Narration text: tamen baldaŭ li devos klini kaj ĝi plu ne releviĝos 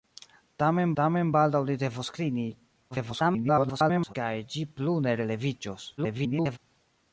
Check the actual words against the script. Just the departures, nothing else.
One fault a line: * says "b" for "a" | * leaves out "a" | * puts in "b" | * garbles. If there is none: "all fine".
* puts in "tamen"
* garbles
* garbles